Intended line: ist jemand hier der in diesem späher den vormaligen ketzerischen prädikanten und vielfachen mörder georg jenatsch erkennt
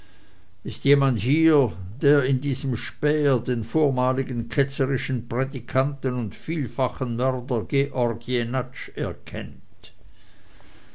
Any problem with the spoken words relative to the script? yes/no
no